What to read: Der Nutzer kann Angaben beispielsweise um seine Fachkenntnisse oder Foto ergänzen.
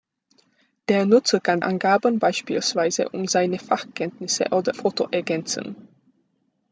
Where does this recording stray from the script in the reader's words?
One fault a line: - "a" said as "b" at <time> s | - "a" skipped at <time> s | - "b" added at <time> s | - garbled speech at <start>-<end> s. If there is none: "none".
none